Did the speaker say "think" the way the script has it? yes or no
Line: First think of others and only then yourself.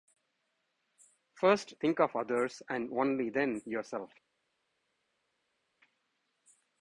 yes